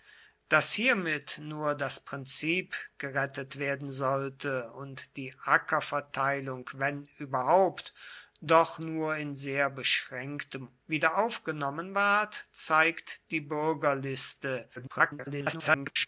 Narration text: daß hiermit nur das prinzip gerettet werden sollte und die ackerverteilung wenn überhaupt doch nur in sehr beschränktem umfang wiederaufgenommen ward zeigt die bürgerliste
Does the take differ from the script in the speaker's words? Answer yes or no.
yes